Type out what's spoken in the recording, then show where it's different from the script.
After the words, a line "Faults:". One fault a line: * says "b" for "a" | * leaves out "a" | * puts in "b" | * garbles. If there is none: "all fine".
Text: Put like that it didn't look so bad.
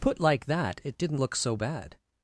Put like that it didn't look so bad.
Faults:
all fine